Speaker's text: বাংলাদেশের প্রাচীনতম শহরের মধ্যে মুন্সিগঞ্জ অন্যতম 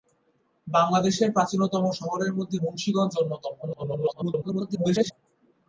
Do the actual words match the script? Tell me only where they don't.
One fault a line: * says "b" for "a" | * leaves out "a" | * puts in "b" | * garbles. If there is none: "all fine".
* garbles